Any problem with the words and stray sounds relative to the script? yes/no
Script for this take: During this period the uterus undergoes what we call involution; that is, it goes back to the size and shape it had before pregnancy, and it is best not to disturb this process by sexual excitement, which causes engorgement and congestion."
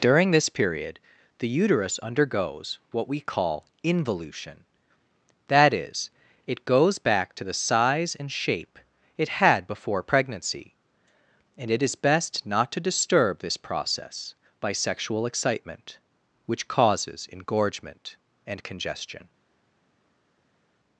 no